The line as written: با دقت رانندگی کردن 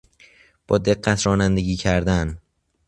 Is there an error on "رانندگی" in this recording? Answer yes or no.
no